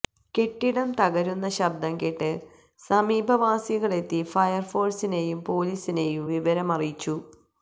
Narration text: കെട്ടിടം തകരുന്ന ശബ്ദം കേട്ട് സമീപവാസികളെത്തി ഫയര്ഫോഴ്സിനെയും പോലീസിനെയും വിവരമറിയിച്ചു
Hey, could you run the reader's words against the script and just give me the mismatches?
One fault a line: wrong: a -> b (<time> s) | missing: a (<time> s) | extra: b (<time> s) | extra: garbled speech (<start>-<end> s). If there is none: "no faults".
no faults